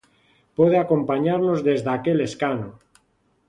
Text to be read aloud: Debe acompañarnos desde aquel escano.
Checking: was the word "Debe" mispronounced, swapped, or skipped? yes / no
yes